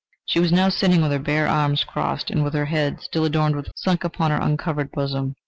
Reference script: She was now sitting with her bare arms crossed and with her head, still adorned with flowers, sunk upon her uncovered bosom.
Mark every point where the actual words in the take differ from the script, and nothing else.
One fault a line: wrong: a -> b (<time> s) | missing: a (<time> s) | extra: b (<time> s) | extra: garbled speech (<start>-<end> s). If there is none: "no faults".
missing: flowers (3.7 s)